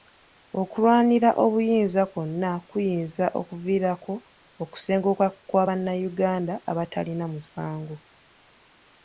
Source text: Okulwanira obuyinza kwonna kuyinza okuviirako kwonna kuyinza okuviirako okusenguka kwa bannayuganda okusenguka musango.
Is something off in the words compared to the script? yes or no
yes